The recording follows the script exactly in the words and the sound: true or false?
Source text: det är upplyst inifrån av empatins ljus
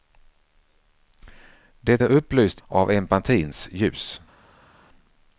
false